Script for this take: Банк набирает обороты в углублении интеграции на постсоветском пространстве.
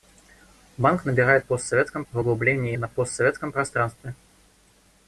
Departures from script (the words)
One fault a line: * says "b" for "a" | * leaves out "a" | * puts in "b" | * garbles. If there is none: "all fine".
* says "постсоветском" for "обороты"
* leaves out "интеграции"